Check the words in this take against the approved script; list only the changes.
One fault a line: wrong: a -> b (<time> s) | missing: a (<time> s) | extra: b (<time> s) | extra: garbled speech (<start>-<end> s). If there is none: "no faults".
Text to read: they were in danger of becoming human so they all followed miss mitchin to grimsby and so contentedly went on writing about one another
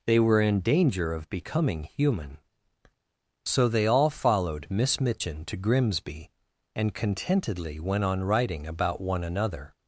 missing: so (6.9 s)